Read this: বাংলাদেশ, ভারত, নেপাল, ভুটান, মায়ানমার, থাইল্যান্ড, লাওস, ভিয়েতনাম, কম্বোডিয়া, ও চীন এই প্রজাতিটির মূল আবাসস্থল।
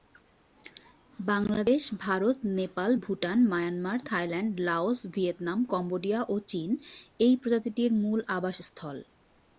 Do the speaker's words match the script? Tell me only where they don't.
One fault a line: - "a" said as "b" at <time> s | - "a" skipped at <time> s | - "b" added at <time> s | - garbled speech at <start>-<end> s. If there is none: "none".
none